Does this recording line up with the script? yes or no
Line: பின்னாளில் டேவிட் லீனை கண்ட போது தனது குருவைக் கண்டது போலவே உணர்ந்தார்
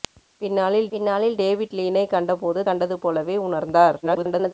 no